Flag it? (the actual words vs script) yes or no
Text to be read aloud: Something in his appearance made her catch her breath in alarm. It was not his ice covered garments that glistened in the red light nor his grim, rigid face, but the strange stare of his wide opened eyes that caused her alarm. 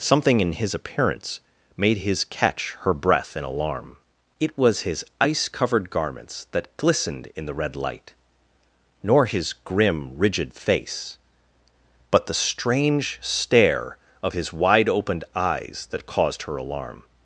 yes